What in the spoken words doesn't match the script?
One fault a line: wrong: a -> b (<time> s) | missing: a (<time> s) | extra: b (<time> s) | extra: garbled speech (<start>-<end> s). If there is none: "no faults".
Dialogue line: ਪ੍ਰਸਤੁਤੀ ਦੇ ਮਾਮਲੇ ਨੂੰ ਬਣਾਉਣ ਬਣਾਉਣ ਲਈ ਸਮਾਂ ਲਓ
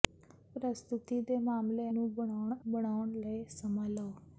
no faults